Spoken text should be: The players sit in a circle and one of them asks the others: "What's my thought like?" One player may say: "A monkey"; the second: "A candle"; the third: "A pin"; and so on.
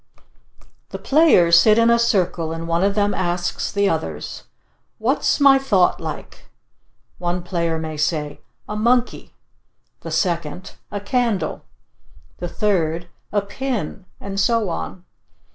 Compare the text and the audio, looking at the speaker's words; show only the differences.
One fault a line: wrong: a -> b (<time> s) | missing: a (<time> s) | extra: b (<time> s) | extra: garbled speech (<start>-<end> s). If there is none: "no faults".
no faults